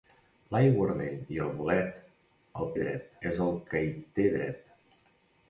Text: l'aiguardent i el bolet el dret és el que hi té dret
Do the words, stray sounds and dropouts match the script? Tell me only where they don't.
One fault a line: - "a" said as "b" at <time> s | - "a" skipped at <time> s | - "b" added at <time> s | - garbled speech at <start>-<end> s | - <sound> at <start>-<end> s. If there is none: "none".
none